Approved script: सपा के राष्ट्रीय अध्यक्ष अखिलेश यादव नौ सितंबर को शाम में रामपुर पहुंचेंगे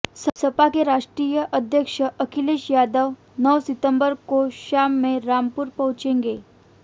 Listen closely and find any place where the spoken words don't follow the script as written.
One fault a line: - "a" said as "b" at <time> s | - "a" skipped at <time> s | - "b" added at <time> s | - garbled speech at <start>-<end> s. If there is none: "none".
none